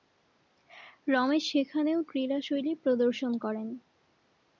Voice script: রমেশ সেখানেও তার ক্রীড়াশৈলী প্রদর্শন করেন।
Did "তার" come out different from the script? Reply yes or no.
yes